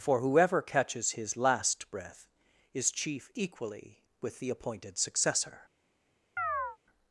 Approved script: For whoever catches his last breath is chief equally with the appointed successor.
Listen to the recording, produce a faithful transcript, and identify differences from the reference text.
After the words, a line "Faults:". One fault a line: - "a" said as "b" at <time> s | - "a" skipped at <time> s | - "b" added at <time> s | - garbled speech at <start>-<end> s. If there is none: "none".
For whoever catches his last breath is chief equally with the appointed successor.
Faults:
none